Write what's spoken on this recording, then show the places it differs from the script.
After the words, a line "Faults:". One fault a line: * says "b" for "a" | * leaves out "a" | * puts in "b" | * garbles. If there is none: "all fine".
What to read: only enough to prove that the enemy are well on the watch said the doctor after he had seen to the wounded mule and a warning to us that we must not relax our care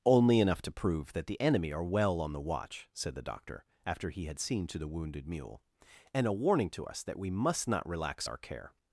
only enough to prove that the enemy are well on the watch said the doctor after he had seen to the wounded mule and a warning to us that we must not relax our care
Faults:
all fine